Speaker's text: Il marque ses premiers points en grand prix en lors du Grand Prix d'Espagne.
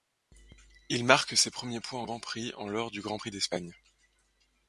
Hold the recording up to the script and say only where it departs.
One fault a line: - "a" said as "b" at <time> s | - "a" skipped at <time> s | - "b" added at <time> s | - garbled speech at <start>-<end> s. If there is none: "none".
none